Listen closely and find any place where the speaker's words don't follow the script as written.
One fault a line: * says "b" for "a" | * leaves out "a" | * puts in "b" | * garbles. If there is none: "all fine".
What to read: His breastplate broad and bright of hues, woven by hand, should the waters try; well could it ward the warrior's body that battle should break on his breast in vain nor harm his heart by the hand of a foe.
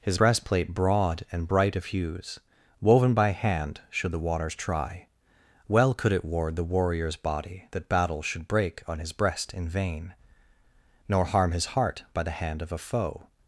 all fine